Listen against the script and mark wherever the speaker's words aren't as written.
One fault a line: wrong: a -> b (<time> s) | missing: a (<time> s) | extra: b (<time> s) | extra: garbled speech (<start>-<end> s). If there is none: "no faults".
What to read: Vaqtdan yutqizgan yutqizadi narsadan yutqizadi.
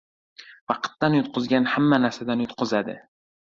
wrong: yutqizadi -> hamma (1.8 s)